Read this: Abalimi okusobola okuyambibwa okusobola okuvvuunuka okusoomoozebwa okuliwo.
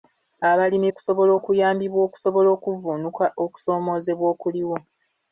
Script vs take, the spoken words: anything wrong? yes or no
no